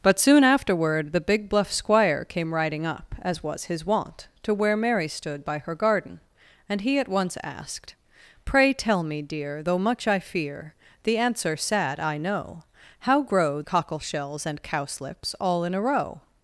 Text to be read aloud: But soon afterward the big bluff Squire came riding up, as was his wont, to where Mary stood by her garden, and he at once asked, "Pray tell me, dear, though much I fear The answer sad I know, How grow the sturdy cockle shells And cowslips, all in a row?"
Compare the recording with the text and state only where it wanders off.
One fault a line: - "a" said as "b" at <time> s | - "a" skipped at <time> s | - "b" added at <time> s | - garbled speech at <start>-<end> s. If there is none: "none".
- "the sturdy" skipped at 13.6 s